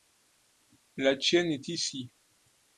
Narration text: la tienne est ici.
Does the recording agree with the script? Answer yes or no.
yes